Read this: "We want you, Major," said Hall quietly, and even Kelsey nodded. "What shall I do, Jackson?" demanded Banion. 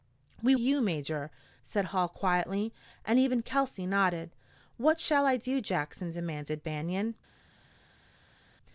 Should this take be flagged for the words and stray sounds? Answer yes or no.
yes